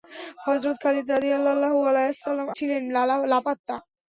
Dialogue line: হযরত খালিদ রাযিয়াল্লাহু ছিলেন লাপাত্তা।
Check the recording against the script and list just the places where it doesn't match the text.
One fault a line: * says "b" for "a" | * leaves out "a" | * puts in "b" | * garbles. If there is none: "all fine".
all fine